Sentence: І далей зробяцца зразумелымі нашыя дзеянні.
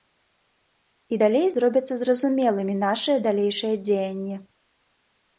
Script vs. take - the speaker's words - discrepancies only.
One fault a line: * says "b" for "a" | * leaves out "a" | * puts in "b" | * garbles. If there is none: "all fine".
* puts in "далейшыя"